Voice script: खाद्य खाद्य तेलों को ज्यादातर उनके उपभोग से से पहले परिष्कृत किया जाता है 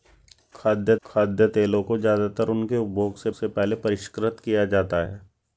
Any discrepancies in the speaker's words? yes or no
no